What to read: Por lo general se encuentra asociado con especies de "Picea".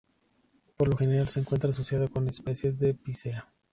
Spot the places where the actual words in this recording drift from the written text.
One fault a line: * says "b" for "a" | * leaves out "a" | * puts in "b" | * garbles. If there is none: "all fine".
all fine